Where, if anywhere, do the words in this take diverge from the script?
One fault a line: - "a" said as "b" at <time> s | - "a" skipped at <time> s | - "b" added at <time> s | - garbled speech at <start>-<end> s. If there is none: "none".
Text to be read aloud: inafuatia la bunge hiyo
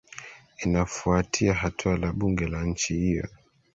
- "hatua" added at 1.5 s
- "la nchi" added at 2.5 s